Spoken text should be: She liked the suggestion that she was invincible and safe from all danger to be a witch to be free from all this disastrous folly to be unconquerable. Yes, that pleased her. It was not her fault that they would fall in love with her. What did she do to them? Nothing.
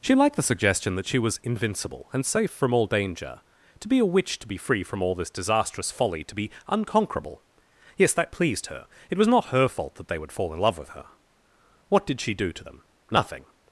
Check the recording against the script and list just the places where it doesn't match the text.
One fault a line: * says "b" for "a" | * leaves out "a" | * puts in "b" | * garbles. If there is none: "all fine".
all fine